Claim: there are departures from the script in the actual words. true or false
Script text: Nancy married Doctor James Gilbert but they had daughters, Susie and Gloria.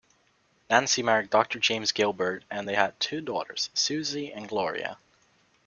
true